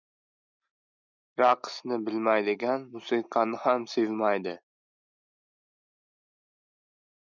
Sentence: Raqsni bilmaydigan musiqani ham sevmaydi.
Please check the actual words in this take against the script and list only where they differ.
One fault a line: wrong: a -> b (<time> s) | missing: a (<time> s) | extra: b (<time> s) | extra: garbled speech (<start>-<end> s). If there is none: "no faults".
no faults